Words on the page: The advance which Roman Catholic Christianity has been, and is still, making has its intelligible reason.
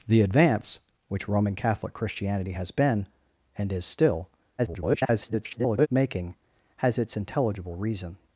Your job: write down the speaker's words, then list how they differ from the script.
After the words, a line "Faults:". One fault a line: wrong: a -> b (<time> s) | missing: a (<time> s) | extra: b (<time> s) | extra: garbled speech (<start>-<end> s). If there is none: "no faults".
The advance which Roman Catholic Christianity has been, and is still, [garbled] making has its intelligible reason.
Faults:
extra: garbled speech (4.6-5.9 s)